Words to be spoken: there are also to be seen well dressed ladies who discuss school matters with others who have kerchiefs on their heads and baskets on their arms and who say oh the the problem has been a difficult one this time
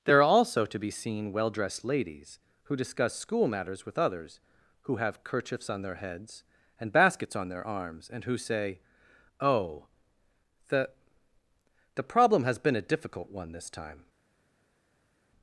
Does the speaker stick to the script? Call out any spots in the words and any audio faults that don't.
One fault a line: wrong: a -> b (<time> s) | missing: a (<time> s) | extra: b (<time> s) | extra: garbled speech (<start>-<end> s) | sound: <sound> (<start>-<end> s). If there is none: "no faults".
no faults